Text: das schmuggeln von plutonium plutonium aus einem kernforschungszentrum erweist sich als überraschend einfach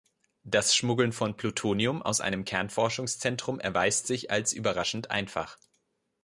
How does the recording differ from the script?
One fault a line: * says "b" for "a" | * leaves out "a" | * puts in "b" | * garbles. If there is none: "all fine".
* leaves out "plutonium"